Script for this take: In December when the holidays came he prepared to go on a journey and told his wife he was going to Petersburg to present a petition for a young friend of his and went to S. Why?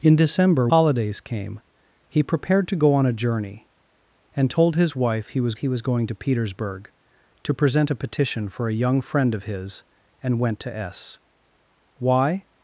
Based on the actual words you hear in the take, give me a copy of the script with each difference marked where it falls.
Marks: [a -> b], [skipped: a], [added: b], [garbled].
In December [skipped: when the] holidays came he prepared to go on a journey and told his wife he was [added: he was] going to Petersburg to present a petition for a young friend of his and went to S. Why?